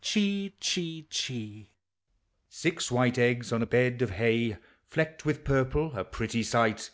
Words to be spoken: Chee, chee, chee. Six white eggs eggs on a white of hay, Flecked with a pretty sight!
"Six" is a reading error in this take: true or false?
false